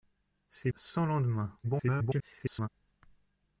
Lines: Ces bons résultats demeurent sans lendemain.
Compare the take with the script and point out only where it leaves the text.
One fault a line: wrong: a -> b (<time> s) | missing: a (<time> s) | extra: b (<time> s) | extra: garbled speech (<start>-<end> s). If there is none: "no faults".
missing: bons résultats demeurent (0.7 s)
extra: garbled speech (1.6-2.7 s)